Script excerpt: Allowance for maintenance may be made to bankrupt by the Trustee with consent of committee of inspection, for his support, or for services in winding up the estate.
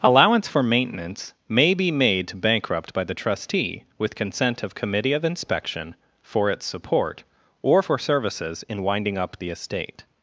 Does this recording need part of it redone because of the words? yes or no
yes